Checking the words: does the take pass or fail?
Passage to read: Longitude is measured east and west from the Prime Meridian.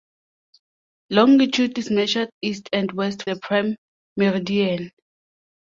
fail